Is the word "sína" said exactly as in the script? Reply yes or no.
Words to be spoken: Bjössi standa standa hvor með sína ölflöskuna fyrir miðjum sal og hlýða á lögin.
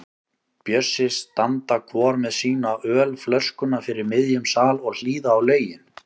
yes